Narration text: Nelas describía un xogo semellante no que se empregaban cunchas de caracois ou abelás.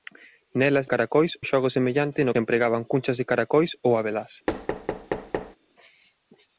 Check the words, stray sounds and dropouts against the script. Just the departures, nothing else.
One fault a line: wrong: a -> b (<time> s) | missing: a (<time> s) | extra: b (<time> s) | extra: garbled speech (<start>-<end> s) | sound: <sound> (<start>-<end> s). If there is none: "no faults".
wrong: describía -> caracois (0.9 s)
missing: que (2.4 s)
sound: thud (4.5-5.6 s)